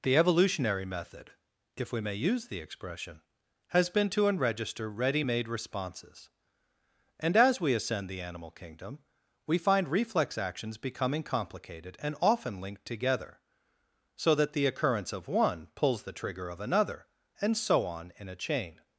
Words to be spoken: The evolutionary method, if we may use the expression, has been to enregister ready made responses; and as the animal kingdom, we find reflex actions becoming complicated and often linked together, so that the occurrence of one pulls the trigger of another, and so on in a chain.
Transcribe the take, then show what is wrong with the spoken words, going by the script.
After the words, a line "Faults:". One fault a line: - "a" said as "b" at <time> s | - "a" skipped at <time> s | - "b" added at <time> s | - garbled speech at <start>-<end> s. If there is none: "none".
The evolutionary method, if we may use the expression, has been to enregister ready made responses; and as we ascend the animal kingdom, we find reflex actions becoming complicated and often linked together, so that the occurrence of one pulls the trigger of another, and so on in a chain.
Faults:
- "we ascend" added at 7.6 s